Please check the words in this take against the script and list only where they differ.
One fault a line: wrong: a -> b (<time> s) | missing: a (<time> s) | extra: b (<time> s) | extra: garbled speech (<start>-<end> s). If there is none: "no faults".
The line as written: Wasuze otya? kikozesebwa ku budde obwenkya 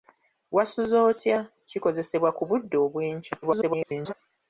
extra: garbled speech (3.4-4.1 s)